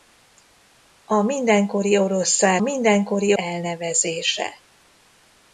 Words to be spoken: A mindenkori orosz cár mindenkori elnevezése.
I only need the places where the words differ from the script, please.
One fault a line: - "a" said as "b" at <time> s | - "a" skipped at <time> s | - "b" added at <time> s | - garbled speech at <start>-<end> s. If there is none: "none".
none